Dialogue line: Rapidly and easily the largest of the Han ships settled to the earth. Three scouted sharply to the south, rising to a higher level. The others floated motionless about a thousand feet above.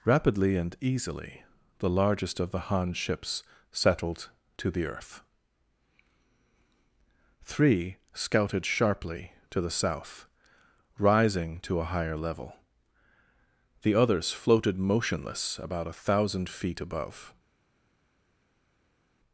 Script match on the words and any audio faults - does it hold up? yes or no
yes